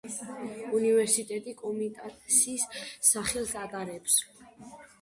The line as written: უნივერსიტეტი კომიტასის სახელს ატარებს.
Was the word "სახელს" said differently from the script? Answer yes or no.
no